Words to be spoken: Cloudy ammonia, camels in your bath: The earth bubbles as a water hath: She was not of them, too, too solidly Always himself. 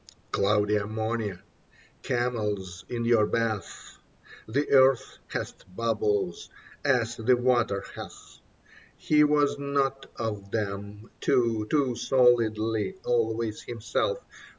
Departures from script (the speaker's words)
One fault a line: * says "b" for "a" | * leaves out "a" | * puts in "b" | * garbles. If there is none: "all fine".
* puts in "hath"
* says "the" for "a"
* says "He" for "She"